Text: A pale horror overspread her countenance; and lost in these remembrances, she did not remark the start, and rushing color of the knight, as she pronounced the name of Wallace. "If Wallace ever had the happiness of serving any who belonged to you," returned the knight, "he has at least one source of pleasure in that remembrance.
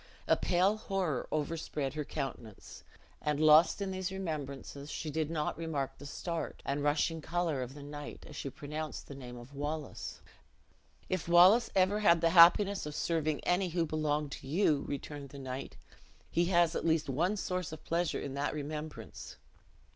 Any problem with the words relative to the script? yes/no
no